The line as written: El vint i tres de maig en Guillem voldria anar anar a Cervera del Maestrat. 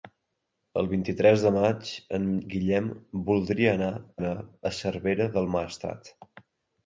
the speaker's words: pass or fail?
pass